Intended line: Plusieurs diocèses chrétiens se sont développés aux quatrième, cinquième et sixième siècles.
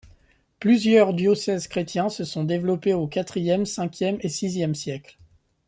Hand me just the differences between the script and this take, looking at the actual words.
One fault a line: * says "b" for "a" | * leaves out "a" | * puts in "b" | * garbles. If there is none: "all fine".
all fine